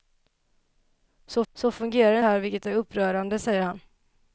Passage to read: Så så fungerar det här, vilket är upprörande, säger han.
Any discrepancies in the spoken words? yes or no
no